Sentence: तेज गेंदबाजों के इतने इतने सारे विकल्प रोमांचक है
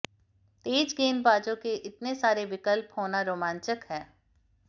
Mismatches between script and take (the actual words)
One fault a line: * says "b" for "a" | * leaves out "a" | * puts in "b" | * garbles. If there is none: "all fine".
* leaves out "इतने"
* puts in "होना"